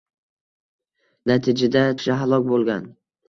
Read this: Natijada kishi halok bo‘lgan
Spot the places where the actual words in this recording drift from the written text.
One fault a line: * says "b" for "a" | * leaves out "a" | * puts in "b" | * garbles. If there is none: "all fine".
all fine